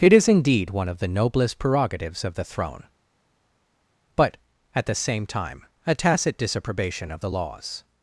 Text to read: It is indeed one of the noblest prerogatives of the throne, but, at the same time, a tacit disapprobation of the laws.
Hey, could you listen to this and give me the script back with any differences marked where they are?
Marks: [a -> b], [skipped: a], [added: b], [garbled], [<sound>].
It is indeed one of the noblest prerogatives of the throne, but, at the same time, a tacit disapprobation of the laws.